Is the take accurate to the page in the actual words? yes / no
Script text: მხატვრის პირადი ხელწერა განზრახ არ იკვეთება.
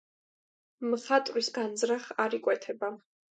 no